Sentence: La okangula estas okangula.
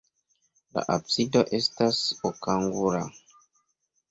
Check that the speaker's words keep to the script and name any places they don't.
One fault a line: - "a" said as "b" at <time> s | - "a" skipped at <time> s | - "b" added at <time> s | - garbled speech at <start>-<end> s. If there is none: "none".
- "okangula" said as "absido" at 0.9 s